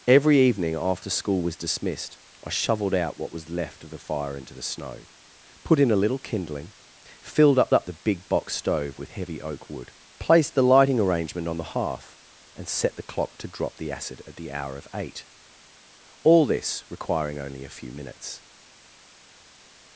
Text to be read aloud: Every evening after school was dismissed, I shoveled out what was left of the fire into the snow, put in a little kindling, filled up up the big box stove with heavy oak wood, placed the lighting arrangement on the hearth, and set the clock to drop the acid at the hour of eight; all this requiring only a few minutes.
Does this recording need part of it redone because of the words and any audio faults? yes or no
no